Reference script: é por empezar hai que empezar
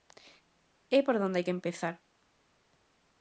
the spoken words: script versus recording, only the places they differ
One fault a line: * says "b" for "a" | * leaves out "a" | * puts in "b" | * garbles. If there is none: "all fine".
* says "onde" for "empezar"